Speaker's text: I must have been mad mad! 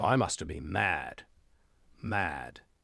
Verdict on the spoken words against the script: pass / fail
pass